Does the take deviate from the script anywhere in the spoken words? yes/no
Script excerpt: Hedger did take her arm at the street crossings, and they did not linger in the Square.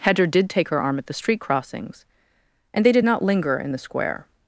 no